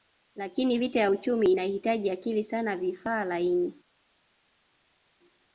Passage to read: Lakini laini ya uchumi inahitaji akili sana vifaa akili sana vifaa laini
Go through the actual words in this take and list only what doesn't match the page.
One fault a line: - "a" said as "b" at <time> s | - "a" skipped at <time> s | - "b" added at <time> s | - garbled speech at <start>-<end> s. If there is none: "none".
- "laini" said as "vita" at 0.8 s
- "akili sana vifaa" skipped at 3.2 s